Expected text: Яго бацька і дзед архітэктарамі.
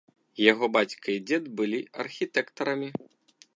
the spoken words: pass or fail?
fail